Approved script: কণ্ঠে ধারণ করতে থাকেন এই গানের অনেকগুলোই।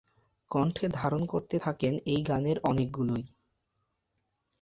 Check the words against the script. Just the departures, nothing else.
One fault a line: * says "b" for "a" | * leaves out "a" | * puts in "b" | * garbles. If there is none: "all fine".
all fine